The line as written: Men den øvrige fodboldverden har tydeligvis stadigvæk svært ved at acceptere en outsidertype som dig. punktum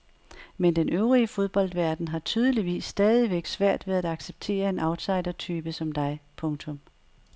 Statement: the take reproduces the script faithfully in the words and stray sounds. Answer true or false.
true